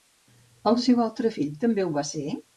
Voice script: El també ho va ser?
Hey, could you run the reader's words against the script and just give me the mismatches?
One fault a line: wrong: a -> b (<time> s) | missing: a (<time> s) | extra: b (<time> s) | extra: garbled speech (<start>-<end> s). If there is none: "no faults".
extra: seu altre fill (0.8 s)